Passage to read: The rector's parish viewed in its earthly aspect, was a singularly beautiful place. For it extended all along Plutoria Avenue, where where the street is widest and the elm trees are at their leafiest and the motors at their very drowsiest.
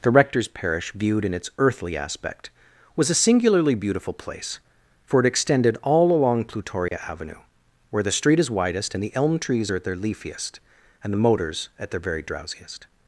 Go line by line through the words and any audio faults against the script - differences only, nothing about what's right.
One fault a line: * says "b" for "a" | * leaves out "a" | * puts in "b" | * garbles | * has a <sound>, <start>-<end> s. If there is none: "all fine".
* has a dropout, 6.9-6.9 s
* leaves out "where"